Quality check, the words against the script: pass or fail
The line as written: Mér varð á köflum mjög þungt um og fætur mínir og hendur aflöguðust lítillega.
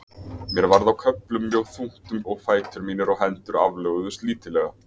pass